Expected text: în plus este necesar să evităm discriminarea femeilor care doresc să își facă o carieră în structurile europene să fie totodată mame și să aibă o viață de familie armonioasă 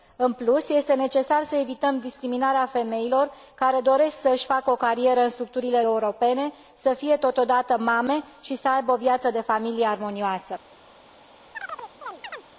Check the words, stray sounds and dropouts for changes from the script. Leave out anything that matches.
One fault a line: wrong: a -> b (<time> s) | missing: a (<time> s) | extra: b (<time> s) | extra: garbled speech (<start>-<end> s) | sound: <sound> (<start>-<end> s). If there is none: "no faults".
sound: chirp (11.5-12.5 s)